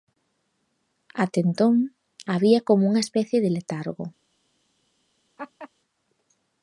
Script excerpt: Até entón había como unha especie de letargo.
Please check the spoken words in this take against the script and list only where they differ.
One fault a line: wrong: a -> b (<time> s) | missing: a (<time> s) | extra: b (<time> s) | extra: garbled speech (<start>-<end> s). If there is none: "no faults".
no faults